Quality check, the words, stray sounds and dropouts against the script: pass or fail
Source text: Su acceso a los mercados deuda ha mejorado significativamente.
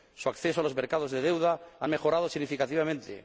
fail